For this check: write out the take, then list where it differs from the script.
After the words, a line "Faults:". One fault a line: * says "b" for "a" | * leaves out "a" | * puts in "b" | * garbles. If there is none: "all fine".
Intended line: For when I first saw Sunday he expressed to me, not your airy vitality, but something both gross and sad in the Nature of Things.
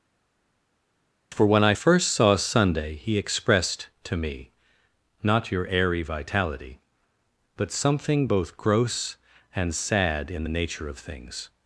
For when I first saw Sunday he expressed to me, not your airy vitality, but something both gross and sad in the Nature of Things.
Faults:
all fine